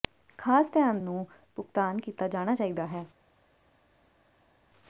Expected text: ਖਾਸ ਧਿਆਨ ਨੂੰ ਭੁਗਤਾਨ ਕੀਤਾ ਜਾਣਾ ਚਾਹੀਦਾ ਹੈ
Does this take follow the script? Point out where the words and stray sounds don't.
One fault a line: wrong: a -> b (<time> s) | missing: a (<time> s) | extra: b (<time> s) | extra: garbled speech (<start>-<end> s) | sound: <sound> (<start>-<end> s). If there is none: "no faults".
no faults